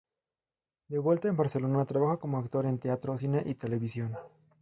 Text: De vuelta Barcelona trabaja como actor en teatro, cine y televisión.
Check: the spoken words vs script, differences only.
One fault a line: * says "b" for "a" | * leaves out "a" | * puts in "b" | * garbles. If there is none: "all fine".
* puts in "en"